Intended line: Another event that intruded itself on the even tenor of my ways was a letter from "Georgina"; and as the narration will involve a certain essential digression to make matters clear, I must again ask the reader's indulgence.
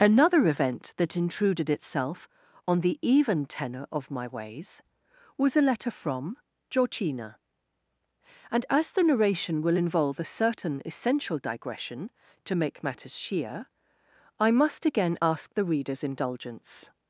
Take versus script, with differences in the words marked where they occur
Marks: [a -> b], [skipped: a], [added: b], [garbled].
Another event that intruded itself on the even tenor of my ways was a letter from "Georgina"; and as the narration will involve a certain essential digression to make matters [clear, -> sheer] I must again ask the reader's indulgence.